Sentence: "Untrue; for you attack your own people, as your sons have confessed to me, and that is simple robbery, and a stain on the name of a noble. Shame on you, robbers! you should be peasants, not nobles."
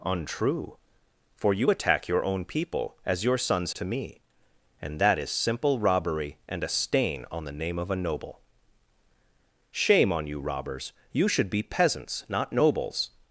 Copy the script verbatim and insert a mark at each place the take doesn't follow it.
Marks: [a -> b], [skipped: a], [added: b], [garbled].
"Untrue; for you attack your own people, as your sons [skipped: have confessed] to me, and that is simple robbery, and a stain on the name of a noble. Shame on you, robbers! you should be peasants, not nobles."